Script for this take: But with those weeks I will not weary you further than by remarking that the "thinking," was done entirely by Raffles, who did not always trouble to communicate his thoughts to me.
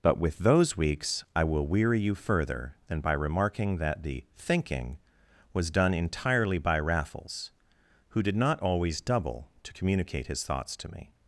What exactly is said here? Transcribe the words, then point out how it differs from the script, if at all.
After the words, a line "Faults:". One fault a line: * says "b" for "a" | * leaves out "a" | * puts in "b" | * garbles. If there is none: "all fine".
But with those weeks I will weary you further than by remarking that the "thinking," was done entirely by Raffles, who did not always double to communicate his thoughts to me.
Faults:
* leaves out "not"
* says "double" for "trouble"